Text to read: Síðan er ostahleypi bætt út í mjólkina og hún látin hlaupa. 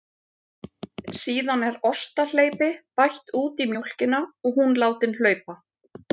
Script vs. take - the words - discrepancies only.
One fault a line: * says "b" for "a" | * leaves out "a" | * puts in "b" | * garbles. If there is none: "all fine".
all fine